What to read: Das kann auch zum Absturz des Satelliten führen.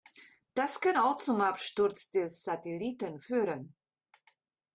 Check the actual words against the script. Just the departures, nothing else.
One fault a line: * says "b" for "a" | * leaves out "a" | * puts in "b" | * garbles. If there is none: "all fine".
all fine